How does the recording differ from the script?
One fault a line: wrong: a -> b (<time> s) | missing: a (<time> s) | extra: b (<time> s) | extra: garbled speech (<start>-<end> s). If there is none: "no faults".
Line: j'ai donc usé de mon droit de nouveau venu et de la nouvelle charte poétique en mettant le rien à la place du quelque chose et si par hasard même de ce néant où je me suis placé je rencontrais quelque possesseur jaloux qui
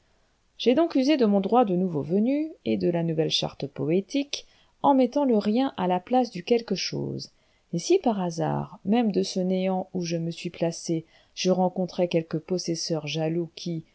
no faults